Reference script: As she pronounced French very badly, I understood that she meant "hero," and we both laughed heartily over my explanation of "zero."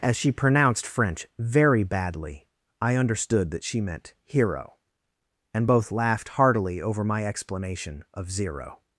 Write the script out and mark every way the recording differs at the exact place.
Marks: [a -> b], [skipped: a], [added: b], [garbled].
As she pronounced French very badly, I understood that she meant "hero," and [skipped: we] both laughed heartily over my explanation of "zero."